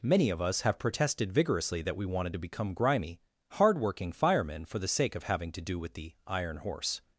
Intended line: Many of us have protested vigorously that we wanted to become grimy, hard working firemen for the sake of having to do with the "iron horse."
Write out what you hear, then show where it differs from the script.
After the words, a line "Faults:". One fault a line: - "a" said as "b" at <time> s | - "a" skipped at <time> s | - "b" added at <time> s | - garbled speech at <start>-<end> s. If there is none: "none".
Many of us have protested vigorously that we wanted to become grimy, hard working firemen for the sake of having to do with the "iron horse."
Faults:
none